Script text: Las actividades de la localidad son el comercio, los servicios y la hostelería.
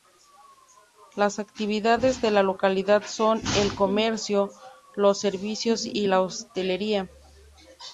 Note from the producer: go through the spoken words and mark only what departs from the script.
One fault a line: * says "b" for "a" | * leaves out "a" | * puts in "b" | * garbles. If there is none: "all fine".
all fine